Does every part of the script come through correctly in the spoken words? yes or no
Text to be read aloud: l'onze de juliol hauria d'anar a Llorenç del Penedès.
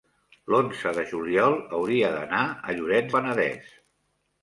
no